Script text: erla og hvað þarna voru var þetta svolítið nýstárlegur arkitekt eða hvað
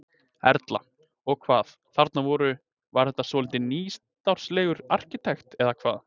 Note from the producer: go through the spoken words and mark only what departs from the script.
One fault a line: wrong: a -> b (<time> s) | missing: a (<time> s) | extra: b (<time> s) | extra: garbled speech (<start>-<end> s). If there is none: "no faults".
no faults